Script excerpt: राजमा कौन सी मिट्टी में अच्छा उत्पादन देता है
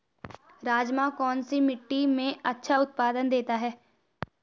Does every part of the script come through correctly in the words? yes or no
yes